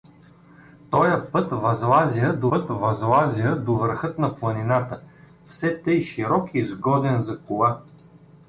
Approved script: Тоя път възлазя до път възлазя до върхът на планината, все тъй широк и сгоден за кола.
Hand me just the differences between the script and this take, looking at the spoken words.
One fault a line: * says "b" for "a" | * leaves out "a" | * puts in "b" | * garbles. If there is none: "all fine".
all fine